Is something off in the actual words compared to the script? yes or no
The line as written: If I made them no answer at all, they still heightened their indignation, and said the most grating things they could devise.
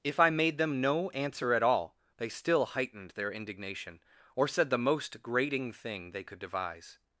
yes